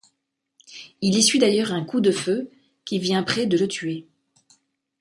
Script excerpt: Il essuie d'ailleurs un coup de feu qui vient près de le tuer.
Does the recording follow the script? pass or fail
pass